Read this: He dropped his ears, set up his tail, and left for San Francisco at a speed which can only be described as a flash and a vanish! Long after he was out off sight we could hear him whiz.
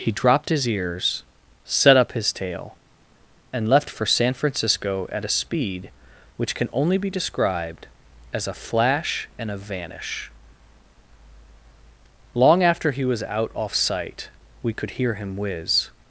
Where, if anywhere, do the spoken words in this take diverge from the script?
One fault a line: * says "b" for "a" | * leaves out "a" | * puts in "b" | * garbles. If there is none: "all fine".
all fine